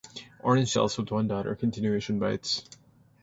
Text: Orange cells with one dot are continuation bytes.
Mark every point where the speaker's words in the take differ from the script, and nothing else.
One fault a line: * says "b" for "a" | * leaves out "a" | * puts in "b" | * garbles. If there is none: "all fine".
all fine